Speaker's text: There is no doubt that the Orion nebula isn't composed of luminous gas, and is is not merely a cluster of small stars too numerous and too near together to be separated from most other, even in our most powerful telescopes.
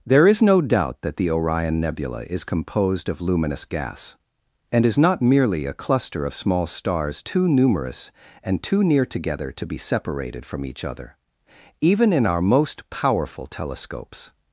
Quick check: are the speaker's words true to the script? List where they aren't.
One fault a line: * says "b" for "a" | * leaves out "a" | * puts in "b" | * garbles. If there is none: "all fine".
* says "is" for "isn't"
* leaves out "is"
* says "each" for "most"